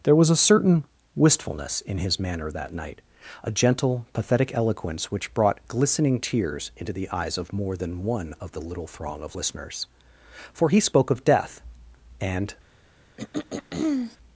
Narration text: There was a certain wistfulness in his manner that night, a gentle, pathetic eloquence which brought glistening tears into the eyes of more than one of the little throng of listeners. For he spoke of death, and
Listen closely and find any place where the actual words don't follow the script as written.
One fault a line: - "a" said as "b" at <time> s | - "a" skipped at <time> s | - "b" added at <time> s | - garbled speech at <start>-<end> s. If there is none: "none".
none